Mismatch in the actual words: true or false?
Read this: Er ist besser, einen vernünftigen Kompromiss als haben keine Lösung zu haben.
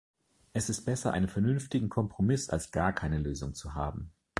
true